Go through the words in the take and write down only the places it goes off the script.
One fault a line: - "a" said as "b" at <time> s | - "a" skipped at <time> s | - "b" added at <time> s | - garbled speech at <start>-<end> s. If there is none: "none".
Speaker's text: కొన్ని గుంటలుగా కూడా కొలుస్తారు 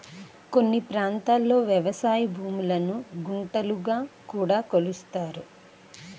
- "ప్రాంతాల్లో వ్యవసాయ భూములను" added at 0.9 s